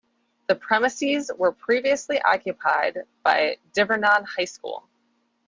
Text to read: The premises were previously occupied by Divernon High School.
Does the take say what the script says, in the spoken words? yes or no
yes